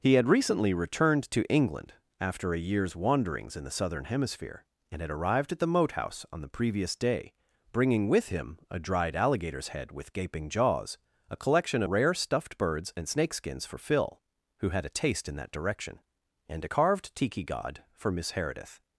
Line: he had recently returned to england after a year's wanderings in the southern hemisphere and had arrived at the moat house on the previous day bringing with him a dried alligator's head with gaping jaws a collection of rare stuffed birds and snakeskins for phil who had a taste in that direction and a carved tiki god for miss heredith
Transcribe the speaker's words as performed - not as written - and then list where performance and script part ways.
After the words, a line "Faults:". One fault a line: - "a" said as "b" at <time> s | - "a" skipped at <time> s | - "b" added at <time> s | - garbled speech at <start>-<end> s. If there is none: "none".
he had recently returned to england after a year's wanderings in the southern hemisphere and had arrived at the moat house on the previous day bringing with him a dried alligator's head with gaping jaws a collection rare stuffed birds and snakeskins for phil who had a taste in that direction and a carved tiki god for miss heredith
Faults:
- "of" skipped at 11.8 s